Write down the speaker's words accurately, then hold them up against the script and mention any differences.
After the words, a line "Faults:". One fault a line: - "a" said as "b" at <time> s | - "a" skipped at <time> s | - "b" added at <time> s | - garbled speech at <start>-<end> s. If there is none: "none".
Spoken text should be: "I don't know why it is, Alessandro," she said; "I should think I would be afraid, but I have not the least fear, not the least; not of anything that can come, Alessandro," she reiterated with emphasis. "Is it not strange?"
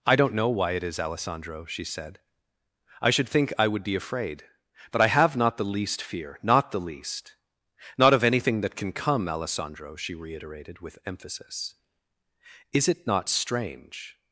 "I don't know why it is, Alessandro," she said; "I should think I would be afraid, but I have not the least fear, not the least; not of anything that can come, Alessandro," she reiterated with emphasis. "Is it not strange?"
Faults:
none